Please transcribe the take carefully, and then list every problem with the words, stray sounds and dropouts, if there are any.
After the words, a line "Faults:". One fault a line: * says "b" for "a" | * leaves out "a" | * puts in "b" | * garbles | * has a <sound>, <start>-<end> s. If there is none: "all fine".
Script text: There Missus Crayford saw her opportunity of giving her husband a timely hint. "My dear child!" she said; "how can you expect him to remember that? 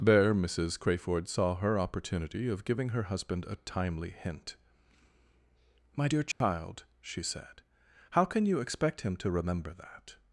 There Missus Crayford saw her opportunity of giving her husband a timely hint. "My dear child!" she said; "how can you expect him to remember that?
Faults:
* has a dropout, 6.3-6.4 s